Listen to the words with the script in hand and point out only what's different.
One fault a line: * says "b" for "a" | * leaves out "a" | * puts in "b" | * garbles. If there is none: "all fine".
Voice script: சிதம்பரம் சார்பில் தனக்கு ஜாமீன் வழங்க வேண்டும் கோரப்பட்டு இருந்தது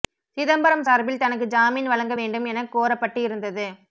* puts in "என"